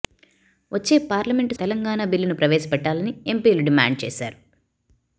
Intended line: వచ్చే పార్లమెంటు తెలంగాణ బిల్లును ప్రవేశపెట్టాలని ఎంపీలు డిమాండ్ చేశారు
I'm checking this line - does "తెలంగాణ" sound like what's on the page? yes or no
yes